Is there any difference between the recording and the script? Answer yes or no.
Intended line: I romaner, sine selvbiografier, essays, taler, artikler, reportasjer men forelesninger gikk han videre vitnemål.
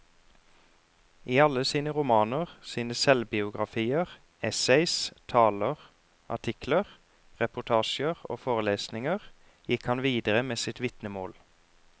yes